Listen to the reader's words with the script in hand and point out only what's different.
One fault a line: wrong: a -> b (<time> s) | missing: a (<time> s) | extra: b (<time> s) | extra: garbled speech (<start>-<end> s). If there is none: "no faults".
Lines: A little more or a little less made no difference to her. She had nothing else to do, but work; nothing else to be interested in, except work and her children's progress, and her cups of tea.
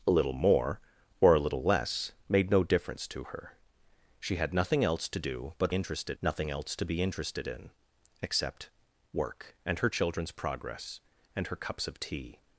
wrong: work -> interested (5.7 s)